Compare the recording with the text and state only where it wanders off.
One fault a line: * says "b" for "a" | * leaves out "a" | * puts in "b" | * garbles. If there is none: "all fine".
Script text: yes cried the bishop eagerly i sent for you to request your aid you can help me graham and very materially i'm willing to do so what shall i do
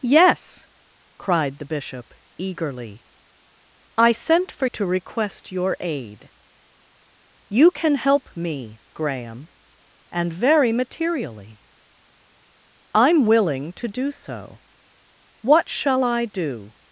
* leaves out "you"